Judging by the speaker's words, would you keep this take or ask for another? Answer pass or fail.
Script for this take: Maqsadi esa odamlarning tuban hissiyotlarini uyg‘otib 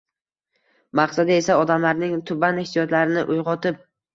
pass